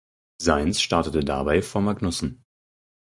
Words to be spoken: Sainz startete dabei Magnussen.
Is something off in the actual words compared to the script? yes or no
yes